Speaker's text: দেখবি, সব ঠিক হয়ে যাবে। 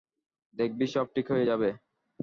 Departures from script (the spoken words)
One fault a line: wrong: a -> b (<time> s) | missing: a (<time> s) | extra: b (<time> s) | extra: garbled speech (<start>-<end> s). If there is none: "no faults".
no faults